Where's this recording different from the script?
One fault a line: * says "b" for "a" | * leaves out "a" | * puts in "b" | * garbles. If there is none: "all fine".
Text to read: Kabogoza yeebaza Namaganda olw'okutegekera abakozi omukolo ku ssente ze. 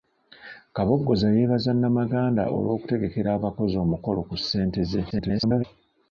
* garbles